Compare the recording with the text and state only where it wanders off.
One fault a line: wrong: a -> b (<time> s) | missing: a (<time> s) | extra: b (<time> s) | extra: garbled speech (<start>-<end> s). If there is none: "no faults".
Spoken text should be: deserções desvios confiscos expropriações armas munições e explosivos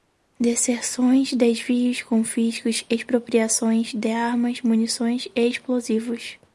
extra: de (3.9 s)